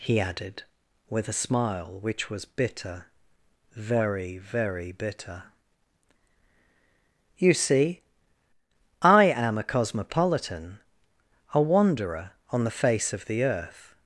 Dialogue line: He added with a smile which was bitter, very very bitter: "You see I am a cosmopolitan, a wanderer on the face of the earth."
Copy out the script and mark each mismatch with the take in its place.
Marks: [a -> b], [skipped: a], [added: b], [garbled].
He added with a smile which was bitter, very very bitter: "You see I am a cosmopolitan, a wanderer on the face of the earth."